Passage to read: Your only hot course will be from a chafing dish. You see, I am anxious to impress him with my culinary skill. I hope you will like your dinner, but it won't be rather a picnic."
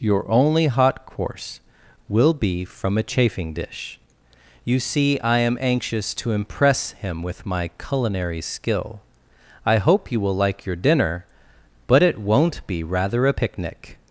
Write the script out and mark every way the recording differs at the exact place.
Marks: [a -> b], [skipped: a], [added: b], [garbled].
Your only hot course will be from a chafing dish. You see, I am anxious to impress him with my culinary skill. I hope you will like your dinner, but it won't be rather a picnic."